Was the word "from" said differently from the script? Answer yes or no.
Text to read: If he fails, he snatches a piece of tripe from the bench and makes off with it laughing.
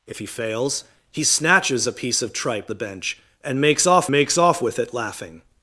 yes